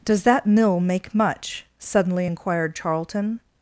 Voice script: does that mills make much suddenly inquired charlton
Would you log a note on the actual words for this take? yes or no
yes